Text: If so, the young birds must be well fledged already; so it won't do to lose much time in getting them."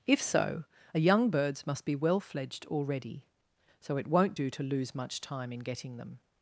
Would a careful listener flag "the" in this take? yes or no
yes